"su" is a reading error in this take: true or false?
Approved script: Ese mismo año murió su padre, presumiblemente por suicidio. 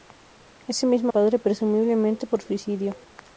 true